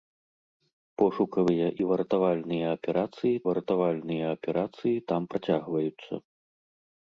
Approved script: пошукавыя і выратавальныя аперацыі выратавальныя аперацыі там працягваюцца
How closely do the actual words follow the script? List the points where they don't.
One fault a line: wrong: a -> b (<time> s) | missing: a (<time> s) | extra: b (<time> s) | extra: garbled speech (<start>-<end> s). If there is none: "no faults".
no faults